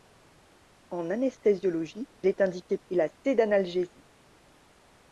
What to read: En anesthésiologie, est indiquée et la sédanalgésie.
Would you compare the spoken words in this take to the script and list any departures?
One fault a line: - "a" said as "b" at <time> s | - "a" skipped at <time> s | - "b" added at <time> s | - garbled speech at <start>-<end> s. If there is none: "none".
none